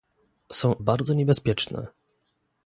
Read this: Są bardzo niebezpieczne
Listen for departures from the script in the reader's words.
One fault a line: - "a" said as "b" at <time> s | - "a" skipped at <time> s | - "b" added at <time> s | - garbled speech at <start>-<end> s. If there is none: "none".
none